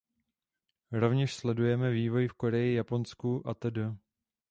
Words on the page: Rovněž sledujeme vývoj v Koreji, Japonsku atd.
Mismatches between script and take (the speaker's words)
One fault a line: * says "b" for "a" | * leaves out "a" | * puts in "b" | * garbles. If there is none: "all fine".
all fine